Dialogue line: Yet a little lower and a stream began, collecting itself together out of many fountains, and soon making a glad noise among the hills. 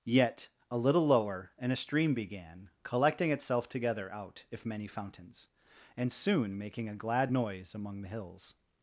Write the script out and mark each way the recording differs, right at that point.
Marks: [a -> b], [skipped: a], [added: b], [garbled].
Yet a little lower and a stream began, collecting itself together out [of -> if] many fountains, and soon making a glad noise among the hills.